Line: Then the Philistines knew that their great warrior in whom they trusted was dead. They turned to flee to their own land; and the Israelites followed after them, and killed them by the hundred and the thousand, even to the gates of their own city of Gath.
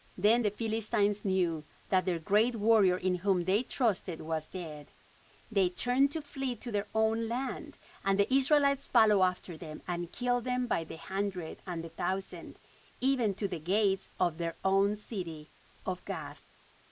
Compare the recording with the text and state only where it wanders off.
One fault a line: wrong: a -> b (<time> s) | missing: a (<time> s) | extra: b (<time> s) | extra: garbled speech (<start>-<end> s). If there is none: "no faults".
no faults